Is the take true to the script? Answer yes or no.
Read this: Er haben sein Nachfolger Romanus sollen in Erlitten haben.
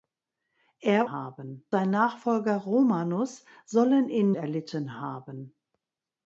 yes